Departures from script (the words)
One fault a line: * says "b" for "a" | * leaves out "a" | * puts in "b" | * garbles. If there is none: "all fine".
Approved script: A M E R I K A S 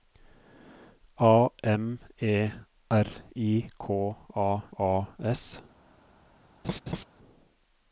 * puts in "A"